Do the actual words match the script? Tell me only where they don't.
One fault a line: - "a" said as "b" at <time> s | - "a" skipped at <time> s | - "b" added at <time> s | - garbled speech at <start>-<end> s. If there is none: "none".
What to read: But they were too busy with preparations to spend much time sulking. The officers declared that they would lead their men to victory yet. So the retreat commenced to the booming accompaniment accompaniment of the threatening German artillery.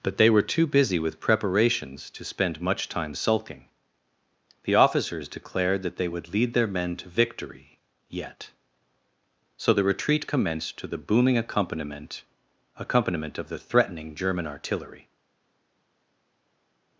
none